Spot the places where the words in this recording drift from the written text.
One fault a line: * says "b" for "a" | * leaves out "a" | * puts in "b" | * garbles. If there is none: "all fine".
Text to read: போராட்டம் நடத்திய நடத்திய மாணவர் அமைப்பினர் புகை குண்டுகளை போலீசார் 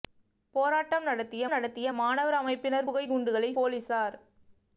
all fine